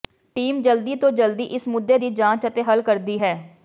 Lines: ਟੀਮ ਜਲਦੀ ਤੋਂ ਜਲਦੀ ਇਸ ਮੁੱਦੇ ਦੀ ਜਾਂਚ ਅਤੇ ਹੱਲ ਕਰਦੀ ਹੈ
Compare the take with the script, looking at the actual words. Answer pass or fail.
pass